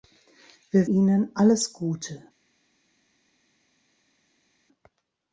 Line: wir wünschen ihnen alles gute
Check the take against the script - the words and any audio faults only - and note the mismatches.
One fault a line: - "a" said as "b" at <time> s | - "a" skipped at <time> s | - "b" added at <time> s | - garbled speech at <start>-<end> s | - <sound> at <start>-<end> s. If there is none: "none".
- "wünschen" skipped at 0.9 s